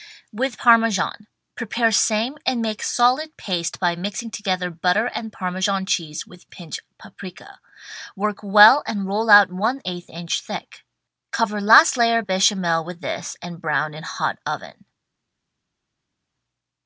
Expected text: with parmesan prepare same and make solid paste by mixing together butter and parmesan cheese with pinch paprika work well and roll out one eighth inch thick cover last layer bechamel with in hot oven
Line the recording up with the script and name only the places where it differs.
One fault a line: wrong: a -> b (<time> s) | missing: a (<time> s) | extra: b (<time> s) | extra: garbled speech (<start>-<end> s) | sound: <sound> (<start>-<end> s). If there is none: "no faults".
extra: this and brown (13.0 s)